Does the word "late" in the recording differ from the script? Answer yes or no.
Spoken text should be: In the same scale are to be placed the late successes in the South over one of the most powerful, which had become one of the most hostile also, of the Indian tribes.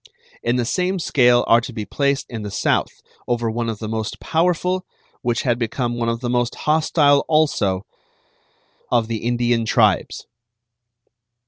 yes